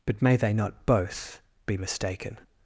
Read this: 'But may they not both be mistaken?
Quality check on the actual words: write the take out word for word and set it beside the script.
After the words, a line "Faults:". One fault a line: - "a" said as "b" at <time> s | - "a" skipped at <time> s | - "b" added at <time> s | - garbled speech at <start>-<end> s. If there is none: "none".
'But may they not both be mistaken?
Faults:
none